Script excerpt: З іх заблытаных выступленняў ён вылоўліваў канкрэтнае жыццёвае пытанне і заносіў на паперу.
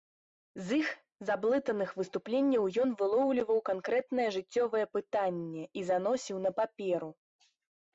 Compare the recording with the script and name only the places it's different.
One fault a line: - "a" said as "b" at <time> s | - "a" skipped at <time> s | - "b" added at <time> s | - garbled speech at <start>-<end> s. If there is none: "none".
none